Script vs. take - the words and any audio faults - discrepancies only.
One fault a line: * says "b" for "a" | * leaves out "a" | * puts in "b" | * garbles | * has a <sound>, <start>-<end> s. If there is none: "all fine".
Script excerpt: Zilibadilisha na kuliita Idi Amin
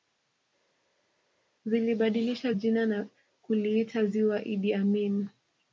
* puts in "jina"
* puts in "Ziwa"